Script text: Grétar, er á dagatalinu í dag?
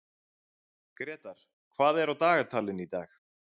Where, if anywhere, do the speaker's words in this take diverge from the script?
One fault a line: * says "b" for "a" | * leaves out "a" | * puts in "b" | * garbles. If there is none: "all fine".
* puts in "hvað"